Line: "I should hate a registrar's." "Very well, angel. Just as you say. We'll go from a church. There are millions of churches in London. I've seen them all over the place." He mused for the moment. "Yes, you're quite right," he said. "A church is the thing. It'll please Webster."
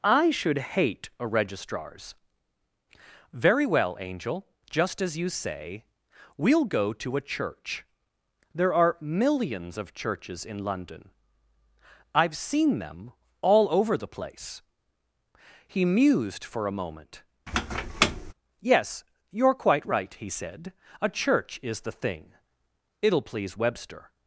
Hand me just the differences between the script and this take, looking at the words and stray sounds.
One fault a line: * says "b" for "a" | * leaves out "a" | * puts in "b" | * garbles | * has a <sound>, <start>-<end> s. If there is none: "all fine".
* says "to" for "from"
* says "a" for "the"
* has a squeak, 17.5-18.3 s